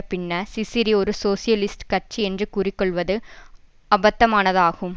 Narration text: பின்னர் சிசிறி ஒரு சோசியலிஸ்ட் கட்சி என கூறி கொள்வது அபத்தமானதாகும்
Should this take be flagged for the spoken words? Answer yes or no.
yes